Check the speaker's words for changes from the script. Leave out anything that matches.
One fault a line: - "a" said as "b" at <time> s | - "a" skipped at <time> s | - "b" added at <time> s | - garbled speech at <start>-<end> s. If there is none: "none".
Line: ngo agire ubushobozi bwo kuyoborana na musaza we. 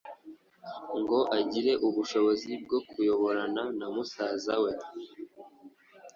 none